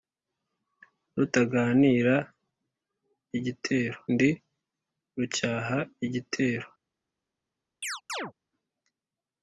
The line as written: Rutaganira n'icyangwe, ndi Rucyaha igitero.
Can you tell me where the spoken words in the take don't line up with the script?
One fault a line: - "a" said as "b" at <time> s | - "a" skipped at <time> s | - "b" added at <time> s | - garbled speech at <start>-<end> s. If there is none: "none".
- "n'icyangwe" said as "igitero" at 3.4 s